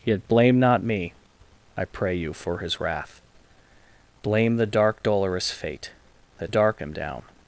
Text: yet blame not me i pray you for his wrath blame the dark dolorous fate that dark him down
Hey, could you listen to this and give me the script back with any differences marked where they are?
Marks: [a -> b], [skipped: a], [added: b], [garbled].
yet blame not me i pray you for his wrath blame the dark dolorous fate that dark him down